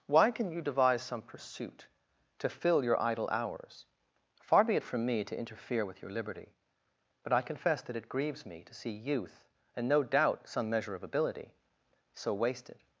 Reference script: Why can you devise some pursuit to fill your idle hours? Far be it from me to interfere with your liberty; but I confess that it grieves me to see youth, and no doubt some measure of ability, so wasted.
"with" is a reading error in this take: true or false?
false